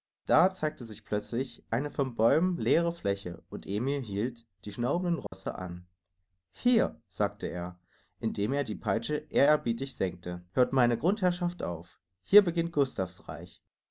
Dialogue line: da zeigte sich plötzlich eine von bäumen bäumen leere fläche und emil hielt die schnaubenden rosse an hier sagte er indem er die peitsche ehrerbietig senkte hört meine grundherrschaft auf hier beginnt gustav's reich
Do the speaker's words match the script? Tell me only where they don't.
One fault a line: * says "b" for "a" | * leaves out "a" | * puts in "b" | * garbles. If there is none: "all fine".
* leaves out "bäumen"